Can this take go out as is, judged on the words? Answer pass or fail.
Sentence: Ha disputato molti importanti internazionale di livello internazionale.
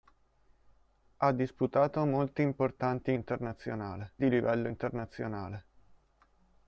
pass